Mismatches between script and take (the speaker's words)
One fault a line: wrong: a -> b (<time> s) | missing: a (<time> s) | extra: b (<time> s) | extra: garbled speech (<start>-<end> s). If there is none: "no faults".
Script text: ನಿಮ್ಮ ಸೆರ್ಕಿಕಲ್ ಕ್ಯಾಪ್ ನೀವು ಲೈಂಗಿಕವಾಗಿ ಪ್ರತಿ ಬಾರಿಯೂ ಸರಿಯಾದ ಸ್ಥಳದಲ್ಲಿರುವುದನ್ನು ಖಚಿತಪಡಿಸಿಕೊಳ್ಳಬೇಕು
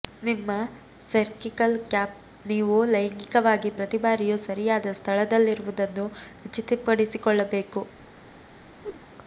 no faults